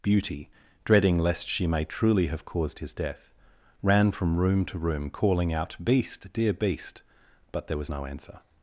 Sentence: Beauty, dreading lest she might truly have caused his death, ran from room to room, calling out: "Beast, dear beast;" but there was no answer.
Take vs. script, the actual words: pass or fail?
fail